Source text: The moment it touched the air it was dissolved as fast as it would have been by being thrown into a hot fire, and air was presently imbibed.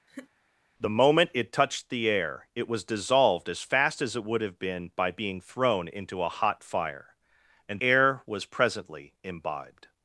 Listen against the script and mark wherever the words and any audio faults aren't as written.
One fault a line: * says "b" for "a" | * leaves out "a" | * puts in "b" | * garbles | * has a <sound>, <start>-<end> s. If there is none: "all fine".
* has a laugh, 0.1-0.3 s